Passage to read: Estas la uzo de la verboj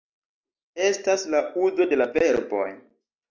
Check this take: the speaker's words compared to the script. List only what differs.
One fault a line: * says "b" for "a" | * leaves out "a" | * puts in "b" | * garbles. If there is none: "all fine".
all fine